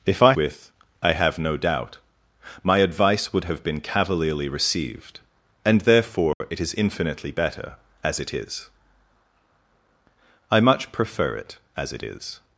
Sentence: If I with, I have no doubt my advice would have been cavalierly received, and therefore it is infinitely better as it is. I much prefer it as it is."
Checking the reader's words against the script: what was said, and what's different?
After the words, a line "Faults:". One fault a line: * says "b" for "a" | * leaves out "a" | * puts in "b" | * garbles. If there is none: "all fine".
If I with, I have no doubt my advice would have been cavalierly received, and therefore it is infinitely better as it is. I much prefer it as it is."
Faults:
all fine